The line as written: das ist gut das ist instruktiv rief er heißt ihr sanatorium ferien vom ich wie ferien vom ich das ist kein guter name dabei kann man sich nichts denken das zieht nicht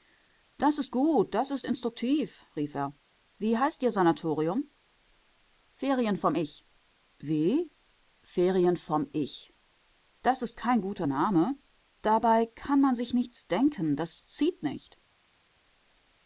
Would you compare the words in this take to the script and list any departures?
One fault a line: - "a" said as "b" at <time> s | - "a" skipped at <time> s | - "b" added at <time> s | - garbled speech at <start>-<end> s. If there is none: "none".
- "wie" added at 3.4 s